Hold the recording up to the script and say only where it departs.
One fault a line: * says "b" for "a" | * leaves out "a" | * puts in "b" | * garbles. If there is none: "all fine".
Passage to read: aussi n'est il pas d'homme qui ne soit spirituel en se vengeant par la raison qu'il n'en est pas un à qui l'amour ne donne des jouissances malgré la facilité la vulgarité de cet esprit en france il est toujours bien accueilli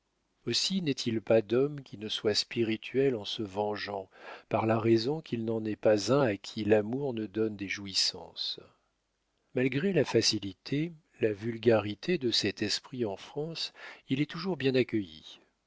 all fine